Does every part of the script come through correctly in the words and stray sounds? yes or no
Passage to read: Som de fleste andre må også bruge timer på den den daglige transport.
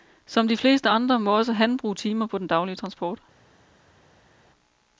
no